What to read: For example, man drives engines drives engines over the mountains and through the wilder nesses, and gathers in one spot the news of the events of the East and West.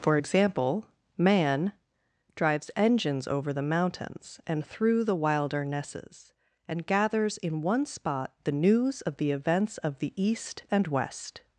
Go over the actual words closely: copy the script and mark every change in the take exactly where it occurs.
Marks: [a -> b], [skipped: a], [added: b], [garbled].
For example, man drives engines [skipped: drives engines] over the mountains and through the wilder nesses, and gathers in one spot the news of the events of the East and West.